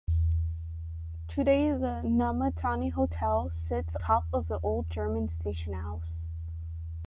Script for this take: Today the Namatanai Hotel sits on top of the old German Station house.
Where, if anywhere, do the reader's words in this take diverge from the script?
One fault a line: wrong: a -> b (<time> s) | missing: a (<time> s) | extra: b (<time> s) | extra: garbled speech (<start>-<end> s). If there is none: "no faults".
missing: on (4.0 s)